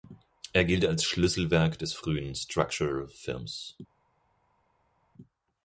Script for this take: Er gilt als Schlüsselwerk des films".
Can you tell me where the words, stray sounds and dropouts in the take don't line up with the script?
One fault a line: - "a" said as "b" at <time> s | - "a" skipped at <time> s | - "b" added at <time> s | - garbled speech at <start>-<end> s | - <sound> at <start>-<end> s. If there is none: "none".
- "frühen Structural" added at 1.9 s